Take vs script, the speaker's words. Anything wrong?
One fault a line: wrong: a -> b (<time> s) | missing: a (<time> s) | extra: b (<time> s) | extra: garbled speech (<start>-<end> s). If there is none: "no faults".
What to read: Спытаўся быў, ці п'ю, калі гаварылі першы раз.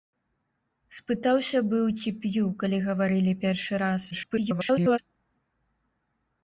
extra: garbled speech (4.1-5.0 s)